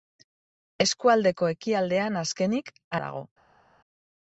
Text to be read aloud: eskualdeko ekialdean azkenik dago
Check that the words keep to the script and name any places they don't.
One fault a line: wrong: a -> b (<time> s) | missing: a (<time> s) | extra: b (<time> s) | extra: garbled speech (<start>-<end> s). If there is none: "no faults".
no faults